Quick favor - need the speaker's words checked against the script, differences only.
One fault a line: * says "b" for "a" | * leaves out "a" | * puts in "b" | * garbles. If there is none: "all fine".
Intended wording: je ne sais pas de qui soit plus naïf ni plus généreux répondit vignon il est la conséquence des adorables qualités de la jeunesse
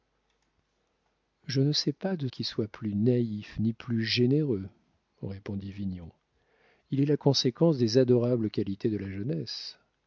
all fine